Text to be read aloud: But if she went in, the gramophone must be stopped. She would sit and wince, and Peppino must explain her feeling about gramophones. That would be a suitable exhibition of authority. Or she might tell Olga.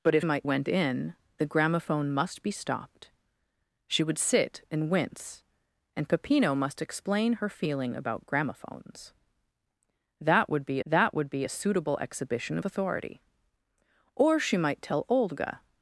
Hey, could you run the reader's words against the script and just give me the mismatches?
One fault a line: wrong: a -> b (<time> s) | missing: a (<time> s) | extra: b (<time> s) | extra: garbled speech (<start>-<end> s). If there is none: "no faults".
wrong: she -> might (0.2 s)
extra: that would be (10.8 s)